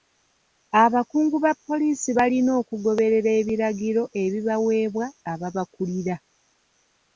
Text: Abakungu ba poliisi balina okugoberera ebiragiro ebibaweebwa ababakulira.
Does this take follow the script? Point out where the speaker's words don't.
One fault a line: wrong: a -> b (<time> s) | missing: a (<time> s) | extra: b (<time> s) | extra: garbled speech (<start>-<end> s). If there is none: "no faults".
no faults